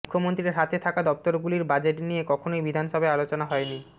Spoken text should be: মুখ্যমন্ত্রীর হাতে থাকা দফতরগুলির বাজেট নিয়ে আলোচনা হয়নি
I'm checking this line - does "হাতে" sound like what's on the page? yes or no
yes